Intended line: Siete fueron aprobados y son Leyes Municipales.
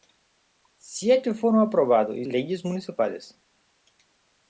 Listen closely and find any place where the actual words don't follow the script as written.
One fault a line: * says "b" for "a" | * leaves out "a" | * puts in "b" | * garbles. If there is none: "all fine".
* leaves out "son"